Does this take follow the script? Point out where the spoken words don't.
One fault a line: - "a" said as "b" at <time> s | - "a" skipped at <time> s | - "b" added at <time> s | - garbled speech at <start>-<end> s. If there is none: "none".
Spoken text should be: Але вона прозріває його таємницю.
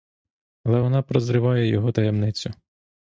none